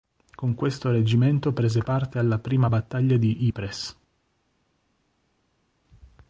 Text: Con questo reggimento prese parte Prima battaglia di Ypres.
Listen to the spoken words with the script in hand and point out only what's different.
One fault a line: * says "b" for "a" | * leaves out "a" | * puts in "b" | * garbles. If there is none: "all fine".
* puts in "alla"